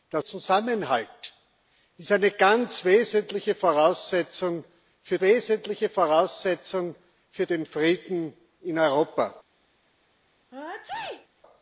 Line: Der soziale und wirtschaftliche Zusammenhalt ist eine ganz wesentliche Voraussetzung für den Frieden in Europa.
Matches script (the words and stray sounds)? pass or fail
fail